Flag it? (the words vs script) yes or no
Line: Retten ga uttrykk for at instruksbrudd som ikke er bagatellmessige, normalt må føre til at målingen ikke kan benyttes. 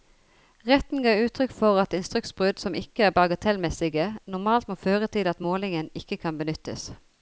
no